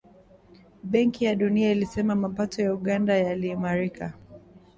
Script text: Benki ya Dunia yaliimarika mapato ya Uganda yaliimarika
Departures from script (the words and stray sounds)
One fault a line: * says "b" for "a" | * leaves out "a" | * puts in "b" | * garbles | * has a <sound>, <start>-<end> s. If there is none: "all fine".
* says "ilisema" for "yaliimarika"